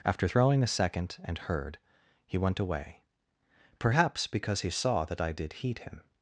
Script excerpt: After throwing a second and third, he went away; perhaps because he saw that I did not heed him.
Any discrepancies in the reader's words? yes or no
yes